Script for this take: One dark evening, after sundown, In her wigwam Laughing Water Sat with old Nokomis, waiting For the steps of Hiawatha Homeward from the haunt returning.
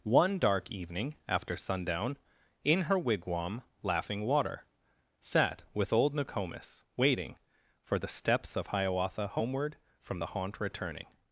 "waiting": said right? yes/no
yes